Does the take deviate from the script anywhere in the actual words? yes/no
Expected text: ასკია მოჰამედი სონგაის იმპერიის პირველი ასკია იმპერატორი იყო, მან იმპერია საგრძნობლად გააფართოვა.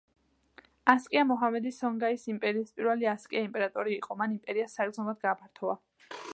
no